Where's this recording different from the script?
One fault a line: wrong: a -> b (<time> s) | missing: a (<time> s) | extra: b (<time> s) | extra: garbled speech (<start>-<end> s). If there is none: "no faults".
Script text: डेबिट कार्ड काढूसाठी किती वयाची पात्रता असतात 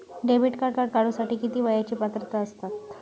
extra: कार्ड (0.7 s)